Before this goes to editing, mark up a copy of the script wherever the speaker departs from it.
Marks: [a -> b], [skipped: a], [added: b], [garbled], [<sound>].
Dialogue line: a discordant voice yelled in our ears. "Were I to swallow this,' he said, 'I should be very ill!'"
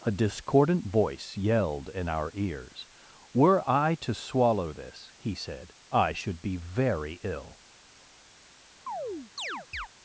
a discordant voice yelled in our ears. "Were I to swallow this,' he said, 'I should be very ill!'" [chirp]